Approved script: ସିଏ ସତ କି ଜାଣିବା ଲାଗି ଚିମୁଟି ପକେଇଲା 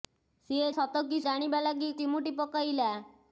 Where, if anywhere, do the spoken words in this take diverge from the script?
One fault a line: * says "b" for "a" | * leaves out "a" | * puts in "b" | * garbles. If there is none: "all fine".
all fine